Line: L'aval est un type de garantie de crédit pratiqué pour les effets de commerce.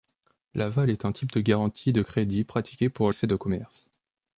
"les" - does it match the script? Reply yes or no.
no